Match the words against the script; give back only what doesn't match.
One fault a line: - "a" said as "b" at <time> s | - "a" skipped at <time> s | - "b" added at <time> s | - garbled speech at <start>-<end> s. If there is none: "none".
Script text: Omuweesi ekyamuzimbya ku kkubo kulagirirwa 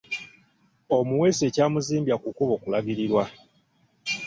none